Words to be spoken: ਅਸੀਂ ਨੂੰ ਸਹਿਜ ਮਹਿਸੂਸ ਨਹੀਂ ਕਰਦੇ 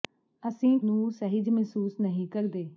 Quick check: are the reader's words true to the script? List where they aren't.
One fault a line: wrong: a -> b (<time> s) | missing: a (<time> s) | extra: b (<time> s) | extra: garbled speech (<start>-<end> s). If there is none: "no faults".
no faults